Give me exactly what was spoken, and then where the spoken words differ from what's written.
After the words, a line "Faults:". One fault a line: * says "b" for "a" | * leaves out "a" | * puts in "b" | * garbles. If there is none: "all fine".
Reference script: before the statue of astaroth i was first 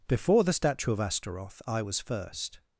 before the statue of astaroth i was first
Faults:
all fine